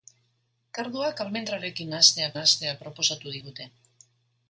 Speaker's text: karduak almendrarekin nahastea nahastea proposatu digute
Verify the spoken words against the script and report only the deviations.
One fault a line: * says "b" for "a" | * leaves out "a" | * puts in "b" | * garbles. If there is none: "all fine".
all fine